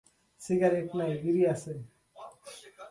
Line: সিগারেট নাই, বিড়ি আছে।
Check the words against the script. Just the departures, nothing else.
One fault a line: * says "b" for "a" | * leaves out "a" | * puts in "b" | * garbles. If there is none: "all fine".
all fine